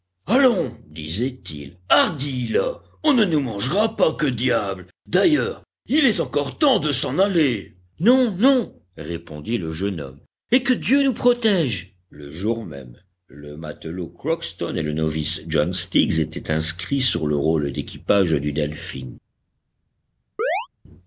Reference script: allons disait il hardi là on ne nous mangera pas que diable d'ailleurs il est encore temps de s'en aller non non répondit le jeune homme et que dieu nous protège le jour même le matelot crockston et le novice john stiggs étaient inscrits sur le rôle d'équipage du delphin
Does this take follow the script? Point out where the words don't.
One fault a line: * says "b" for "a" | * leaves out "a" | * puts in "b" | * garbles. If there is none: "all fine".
all fine